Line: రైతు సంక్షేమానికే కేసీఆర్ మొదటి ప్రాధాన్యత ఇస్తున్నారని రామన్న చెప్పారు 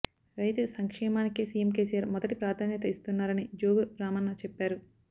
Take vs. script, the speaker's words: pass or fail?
fail